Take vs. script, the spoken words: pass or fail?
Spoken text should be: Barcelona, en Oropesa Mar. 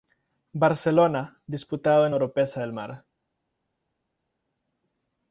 fail